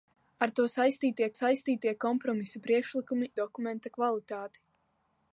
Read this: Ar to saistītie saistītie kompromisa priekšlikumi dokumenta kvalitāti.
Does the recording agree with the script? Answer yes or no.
yes